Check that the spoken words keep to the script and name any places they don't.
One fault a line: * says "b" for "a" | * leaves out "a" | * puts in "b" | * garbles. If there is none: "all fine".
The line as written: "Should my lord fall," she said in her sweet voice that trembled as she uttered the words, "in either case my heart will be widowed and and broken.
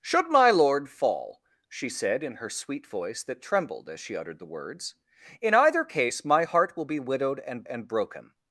all fine